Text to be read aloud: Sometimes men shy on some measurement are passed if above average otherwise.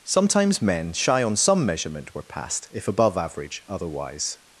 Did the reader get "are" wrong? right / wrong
wrong